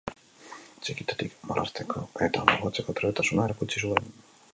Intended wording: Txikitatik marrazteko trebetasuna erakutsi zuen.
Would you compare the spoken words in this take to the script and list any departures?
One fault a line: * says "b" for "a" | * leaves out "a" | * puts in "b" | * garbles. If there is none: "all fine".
* puts in "eta margotzeko"